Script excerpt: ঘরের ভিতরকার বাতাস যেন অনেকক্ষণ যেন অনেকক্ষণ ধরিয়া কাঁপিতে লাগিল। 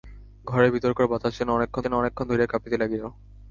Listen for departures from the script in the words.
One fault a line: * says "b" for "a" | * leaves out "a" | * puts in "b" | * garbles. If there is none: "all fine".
all fine